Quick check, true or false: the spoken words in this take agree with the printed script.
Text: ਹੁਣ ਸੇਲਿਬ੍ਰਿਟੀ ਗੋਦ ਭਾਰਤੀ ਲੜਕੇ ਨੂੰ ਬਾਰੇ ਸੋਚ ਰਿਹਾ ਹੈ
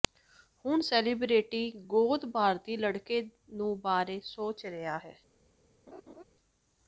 true